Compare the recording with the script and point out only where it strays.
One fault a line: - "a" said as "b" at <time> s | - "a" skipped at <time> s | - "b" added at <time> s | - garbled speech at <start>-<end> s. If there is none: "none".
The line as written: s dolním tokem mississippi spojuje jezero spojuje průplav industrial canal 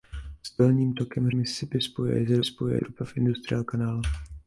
none